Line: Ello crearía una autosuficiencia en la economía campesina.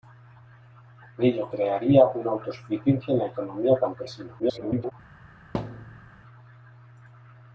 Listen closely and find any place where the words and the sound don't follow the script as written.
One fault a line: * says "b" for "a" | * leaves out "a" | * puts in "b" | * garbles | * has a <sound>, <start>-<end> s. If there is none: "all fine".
* garbles
* has a thud, 5.5-6.1 s